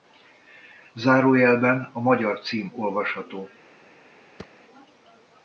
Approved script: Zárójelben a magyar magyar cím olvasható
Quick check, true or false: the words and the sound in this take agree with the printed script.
false